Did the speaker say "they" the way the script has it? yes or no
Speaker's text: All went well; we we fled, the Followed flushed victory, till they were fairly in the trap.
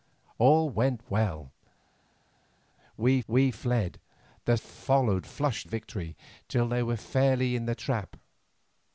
yes